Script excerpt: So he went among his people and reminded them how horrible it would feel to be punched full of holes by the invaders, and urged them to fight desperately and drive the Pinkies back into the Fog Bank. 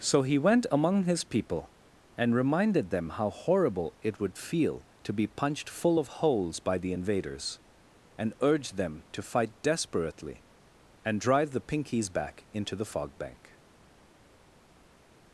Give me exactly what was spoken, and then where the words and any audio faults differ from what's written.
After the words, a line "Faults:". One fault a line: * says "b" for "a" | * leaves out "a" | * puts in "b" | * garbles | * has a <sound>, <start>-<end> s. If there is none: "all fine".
So he went among his people and reminded them how horrible it would feel to be punched full of holes by the invaders, and urged them to fight desperately and drive the Pinkies back into the Fog Bank.
Faults:
all fine